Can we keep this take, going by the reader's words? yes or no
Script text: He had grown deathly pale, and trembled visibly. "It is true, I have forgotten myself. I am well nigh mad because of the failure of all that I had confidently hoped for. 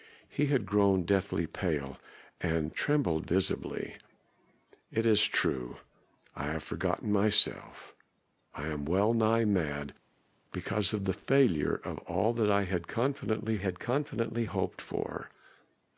no